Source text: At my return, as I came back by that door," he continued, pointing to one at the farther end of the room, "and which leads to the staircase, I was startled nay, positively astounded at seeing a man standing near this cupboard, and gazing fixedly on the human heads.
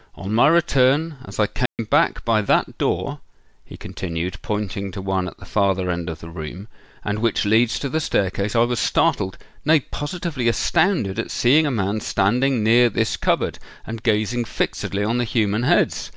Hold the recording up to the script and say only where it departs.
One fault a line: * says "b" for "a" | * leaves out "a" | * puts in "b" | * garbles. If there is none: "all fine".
* says "On" for "At"